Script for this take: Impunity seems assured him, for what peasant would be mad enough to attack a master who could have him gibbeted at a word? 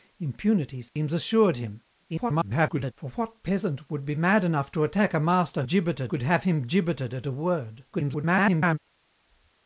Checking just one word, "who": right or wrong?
wrong